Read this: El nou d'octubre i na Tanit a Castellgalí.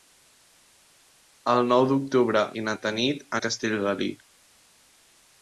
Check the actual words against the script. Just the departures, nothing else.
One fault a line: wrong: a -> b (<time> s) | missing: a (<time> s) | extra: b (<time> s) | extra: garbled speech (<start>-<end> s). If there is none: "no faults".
no faults